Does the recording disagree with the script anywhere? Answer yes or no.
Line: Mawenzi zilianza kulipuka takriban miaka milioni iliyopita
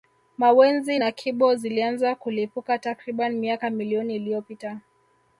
yes